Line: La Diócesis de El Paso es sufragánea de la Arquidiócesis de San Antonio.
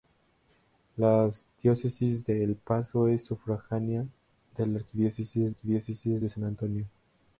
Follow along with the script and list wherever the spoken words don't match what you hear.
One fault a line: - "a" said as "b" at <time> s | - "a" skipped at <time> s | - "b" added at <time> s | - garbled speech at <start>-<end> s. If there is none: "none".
- "Arquidiócesis" added at 5.5 s